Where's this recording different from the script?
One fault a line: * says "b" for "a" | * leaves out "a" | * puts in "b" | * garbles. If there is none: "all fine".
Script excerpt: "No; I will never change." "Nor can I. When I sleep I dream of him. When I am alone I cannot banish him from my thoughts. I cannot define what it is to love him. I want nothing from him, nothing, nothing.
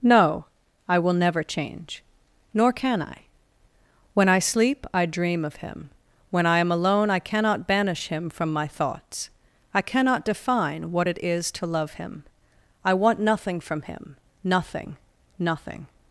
all fine